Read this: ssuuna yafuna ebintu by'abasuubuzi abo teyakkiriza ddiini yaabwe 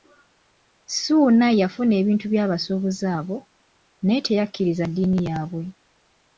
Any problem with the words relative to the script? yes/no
yes